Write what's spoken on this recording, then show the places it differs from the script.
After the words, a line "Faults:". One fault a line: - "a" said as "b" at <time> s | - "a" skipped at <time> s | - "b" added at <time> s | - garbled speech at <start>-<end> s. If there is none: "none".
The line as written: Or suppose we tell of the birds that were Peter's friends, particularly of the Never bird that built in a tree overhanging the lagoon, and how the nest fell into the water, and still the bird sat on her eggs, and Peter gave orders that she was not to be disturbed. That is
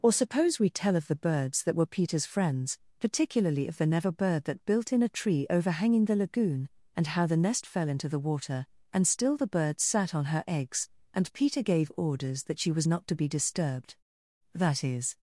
Or suppose we tell of the birds that were Peter's friends, particularly of the Never bird that built in a tree overhanging the lagoon, and how the nest fell into the water, and still the bird sat on her eggs, and Peter gave orders that she was not to be disturbed. That is
Faults:
none